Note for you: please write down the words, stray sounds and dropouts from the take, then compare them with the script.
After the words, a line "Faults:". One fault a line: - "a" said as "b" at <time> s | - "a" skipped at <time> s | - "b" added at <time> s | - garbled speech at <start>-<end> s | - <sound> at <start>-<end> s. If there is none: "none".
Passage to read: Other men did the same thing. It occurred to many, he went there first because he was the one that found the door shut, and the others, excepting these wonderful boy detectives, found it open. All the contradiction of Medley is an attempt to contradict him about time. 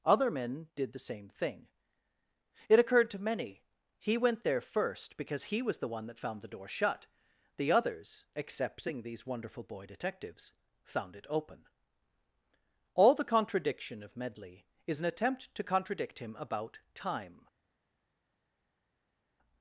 Other men did the same thing. It occurred to many, he went there first because he was the one that found the door shut, the others, excepting these wonderful boy detectives, found it open. All the contradiction of Medley is an attempt to contradict him about time.
Faults:
- "and" skipped at 7.0 s